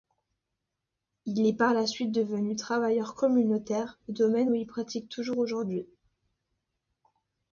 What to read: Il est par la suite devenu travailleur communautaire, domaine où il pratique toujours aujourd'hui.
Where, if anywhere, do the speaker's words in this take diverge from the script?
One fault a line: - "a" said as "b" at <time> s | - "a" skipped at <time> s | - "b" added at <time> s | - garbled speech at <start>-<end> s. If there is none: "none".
none